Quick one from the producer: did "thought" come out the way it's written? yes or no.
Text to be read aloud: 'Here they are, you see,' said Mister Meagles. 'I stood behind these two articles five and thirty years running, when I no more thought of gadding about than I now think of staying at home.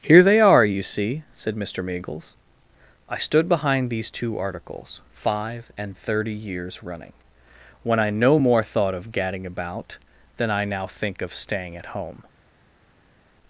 yes